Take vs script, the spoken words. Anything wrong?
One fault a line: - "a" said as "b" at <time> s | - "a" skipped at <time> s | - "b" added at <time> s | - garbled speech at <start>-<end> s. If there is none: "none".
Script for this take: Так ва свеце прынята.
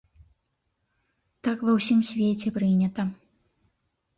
- "ўсім" added at 1.8 s